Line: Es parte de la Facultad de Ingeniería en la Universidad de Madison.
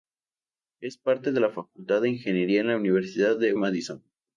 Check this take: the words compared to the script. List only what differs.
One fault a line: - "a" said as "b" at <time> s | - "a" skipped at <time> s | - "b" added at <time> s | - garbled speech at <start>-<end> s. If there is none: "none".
none